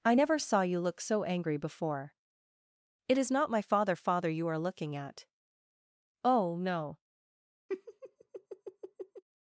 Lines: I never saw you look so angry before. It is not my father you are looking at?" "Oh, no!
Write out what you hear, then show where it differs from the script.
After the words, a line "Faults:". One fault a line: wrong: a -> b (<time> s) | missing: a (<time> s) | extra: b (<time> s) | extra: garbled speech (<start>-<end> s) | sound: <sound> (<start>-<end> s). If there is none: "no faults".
I never saw you look so angry before. It is not my father father you are looking at?" "Oh, no!
Faults:
extra: father (4.0 s)
sound: laugh (7.7-9.2 s)